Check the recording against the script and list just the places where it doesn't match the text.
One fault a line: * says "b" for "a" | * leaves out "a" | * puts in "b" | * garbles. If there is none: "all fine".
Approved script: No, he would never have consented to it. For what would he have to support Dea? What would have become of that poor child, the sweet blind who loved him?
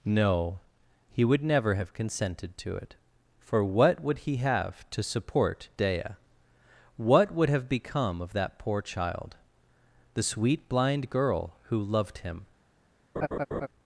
* puts in "girl"